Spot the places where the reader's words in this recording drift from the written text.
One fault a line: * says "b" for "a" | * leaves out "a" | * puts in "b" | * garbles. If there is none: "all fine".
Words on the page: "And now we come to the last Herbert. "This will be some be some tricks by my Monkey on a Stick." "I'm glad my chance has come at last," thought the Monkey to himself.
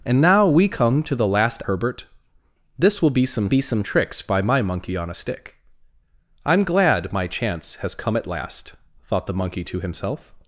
all fine